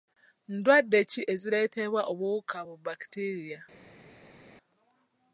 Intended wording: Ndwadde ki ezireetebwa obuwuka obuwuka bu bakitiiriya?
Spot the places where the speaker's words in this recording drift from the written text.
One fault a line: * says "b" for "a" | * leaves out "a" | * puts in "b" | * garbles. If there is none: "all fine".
* leaves out "obuwuka"